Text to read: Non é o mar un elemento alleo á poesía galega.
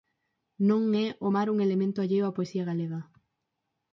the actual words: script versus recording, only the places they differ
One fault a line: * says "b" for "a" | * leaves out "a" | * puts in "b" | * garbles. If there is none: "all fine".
all fine